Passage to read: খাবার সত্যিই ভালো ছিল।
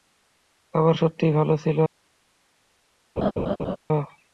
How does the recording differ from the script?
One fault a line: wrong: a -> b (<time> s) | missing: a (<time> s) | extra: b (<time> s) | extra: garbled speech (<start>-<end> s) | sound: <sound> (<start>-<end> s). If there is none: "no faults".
sound: laugh (3.2-3.8 s)